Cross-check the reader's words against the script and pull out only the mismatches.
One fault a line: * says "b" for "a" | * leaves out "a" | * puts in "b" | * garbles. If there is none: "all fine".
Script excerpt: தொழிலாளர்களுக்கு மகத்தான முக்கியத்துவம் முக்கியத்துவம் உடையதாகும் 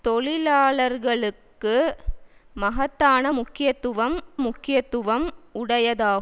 all fine